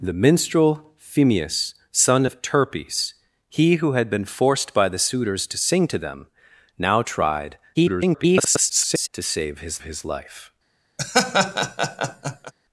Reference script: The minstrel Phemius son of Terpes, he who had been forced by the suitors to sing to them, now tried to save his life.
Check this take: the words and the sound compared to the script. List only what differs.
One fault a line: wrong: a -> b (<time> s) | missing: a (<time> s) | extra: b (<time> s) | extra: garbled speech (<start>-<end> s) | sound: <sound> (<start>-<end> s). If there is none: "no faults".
extra: garbled speech (7.7-9.1 s)
extra: his (9.8 s)
sound: laugh (11.0-12.5 s)